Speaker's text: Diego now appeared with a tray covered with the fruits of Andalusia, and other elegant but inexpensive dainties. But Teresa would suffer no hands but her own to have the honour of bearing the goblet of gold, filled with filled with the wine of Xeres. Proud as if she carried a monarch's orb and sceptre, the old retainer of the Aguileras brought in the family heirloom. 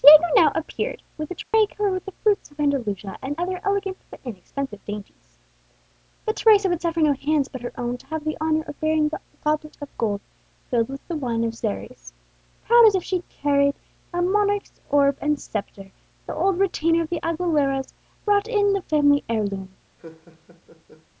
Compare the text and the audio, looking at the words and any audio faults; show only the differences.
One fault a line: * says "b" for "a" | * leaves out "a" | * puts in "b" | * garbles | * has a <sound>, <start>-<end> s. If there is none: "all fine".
* has a dropout, 1.4-1.5 s
* leaves out "filled with"
* has a laugh, 20.0-21.1 s